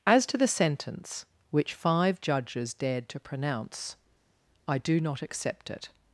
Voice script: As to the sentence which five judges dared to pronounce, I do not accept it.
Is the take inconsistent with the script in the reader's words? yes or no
no